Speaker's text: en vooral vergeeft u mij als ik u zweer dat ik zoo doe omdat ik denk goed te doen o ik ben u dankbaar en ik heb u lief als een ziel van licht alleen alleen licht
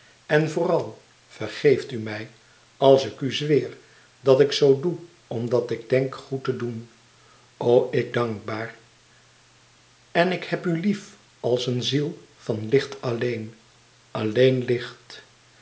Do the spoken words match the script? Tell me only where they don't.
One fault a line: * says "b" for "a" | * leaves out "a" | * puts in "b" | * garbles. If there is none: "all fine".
* leaves out "ben u"